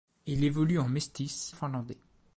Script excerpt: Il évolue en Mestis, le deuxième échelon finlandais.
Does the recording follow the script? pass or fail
fail